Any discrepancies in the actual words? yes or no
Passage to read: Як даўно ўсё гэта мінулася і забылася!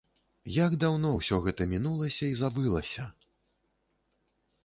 no